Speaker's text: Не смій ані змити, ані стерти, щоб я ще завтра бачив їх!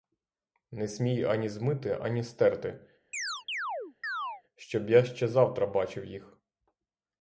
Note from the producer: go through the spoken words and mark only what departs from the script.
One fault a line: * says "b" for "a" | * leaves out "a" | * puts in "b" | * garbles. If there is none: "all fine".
all fine